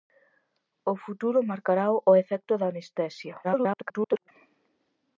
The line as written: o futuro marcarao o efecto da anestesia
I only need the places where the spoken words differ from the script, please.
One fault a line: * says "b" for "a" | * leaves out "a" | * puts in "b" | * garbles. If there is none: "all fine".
* garbles